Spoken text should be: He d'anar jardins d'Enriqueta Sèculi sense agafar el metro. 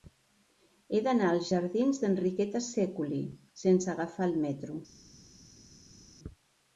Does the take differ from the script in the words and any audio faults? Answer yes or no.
yes